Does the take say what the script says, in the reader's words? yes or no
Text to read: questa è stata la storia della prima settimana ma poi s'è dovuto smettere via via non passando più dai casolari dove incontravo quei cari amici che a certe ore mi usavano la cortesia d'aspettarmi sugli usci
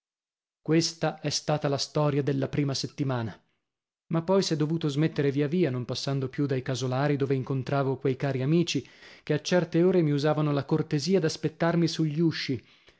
yes